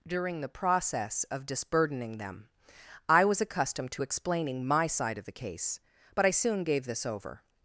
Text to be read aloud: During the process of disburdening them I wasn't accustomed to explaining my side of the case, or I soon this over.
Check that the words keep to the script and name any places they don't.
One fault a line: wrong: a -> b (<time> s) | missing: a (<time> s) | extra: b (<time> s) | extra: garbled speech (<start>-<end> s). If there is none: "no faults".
wrong: wasn't -> was (3.2 s)
wrong: or -> but (6.1 s)
extra: gave (6.6 s)